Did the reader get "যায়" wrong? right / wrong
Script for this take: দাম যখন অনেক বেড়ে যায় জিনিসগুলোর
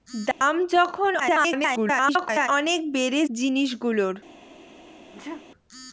wrong